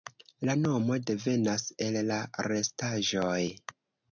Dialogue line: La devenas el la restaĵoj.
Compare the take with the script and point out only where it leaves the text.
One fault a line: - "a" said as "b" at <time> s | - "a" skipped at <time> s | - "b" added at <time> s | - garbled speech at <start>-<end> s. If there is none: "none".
- "nomo" added at 0.6 s